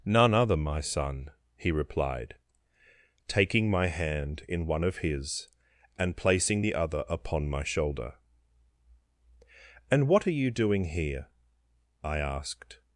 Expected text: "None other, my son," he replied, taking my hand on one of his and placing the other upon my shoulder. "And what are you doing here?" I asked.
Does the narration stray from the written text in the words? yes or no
yes